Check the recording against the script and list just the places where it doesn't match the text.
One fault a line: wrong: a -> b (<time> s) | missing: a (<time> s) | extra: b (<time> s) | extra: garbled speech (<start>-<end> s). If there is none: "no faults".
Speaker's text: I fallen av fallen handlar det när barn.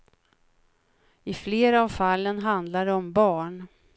wrong: fallen -> flera (1.3 s)
wrong: när -> om (2.9 s)